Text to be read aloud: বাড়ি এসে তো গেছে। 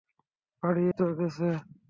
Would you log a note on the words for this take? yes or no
yes